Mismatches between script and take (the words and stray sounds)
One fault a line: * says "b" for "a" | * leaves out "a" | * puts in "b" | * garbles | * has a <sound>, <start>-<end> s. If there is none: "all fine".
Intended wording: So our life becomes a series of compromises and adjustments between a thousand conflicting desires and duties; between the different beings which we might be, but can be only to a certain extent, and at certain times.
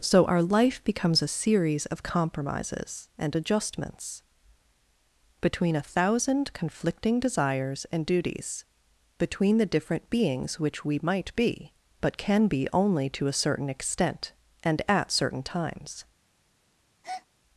* has a breath, 17.0-17.3 s